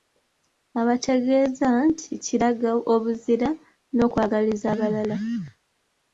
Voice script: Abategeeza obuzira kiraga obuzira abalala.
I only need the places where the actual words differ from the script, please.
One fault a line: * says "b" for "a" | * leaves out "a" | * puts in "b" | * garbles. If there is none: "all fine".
* says "nti" for "obuzira"
* puts in "n'okwagaliza"